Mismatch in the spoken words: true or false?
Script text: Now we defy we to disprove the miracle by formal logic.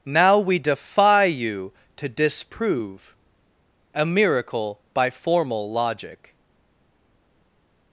true